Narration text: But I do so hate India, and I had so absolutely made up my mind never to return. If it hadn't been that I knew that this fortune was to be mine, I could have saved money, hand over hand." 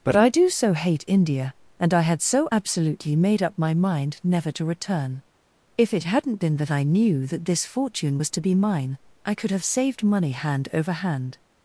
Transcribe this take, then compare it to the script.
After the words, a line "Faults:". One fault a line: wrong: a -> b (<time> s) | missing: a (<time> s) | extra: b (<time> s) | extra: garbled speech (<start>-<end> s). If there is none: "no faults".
But I do so hate India, and I had so absolutely made up my mind never to return. If it hadn't been that I knew that this fortune was to be mine, I could have saved money, hand over hand."
Faults:
no faults